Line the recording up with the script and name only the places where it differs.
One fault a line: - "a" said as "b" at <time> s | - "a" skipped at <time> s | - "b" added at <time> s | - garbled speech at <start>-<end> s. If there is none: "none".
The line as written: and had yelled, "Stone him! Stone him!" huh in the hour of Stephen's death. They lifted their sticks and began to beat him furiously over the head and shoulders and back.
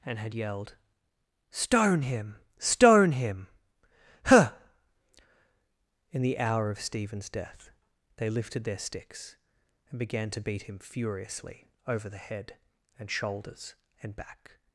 none